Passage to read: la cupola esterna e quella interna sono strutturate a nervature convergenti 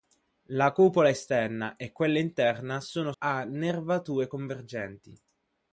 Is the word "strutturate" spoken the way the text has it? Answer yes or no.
no